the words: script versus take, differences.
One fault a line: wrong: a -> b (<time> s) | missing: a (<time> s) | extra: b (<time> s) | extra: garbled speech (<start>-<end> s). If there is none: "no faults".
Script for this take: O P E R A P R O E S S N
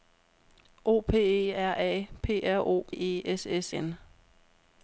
no faults